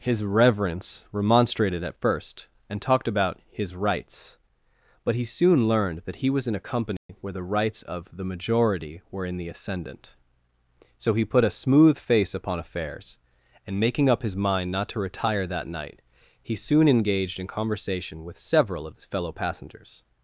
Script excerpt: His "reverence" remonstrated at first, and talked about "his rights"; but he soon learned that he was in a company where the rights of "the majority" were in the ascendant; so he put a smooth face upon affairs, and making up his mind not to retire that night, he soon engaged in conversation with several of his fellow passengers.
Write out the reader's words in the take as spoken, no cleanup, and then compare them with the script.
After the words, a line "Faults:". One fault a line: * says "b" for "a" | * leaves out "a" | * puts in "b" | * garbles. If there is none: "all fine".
His "reverence" remonstrated at first, and talked about "his rights"; but he soon learned that he was in a company where the rights of "the majority" were in the ascendant; so he put a smooth face upon affairs, and making up his mind not to retire that night, he soon engaged in conversation with several of his fellow passengers.
Faults:
all fine